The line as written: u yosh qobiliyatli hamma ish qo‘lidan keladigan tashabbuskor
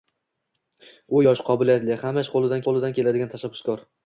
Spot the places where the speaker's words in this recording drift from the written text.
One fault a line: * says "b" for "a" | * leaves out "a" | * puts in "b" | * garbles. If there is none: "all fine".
* puts in "qo‘lidan"